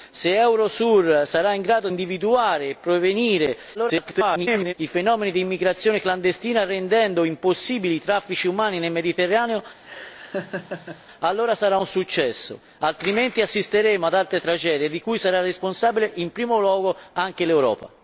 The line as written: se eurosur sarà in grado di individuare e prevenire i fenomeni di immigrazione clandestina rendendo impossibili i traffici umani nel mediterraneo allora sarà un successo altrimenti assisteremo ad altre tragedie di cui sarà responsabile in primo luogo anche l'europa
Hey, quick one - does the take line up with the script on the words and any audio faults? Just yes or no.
no